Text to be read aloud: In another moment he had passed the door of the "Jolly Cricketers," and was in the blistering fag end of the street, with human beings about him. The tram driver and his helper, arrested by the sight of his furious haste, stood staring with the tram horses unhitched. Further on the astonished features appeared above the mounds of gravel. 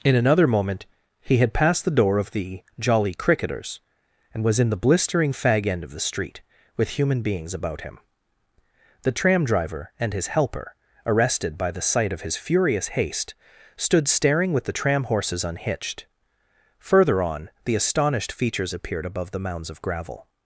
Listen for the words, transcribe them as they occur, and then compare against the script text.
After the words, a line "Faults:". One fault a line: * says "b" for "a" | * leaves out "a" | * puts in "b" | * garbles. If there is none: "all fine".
In another moment he had passed the door of the "Jolly Cricketers," and was in the blistering fag end of the street, with human beings about him. The tram driver and his helper, arrested by the sight of his furious haste, stood staring with the tram horses unhitched. Further on the astonished features appeared above the mounds of gravel.
Faults:
all fine